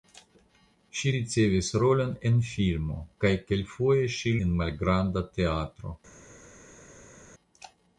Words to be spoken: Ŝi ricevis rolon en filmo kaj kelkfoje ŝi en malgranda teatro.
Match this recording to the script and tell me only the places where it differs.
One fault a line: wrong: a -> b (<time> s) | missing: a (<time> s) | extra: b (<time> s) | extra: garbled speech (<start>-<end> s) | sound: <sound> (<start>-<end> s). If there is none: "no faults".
no faults